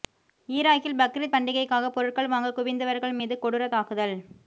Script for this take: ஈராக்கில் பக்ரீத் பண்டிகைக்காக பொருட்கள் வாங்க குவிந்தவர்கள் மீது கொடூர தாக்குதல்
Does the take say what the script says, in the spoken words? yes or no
yes